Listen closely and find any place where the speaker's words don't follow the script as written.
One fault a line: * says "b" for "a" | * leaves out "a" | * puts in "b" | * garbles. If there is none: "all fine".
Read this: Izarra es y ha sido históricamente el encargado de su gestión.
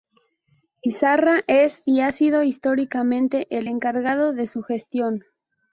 all fine